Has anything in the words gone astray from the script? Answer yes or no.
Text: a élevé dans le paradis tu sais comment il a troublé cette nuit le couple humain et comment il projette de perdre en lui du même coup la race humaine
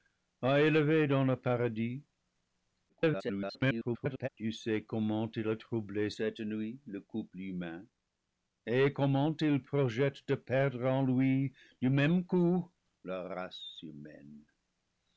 yes